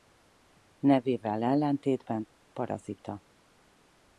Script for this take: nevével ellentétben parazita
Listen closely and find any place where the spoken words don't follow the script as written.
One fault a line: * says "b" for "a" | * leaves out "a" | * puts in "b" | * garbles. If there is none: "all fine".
all fine